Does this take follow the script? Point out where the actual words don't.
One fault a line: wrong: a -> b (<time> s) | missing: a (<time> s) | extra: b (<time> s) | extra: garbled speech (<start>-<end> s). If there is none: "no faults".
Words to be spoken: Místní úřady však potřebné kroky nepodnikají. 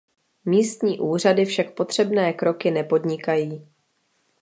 no faults